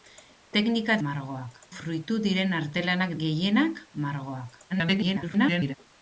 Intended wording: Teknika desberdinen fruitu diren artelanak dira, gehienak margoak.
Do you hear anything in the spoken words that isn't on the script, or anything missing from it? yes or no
yes